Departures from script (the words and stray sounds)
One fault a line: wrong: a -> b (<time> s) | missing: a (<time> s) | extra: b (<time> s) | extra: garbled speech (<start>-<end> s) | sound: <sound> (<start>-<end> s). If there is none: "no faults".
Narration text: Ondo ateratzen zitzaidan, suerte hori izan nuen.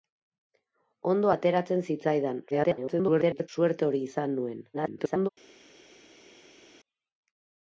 extra: garbled speech (2.5-3.5 s)
extra: garbled speech (4.7-5.3 s)